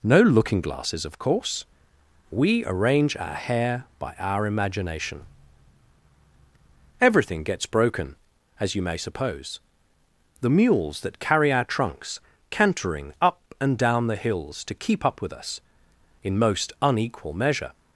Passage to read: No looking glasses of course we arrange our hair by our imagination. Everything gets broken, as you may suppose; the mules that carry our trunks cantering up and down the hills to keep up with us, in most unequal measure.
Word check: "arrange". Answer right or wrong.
right